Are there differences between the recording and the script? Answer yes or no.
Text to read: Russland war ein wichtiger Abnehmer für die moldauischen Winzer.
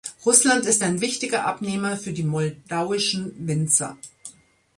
yes